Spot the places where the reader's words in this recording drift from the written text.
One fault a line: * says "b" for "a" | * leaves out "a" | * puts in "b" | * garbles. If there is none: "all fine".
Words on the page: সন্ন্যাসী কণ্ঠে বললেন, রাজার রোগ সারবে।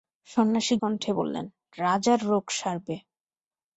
all fine